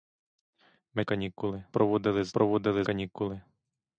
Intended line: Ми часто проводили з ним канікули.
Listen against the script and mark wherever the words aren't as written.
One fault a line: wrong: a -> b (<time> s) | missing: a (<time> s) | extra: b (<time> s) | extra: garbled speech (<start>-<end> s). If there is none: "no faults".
wrong: часто -> канікули (1.0 s)
wrong: ним -> проводили (2.3 s)